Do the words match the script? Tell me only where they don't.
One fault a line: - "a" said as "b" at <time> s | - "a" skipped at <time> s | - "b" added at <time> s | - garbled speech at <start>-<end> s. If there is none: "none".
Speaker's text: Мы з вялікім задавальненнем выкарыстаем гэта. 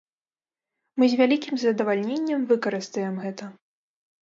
none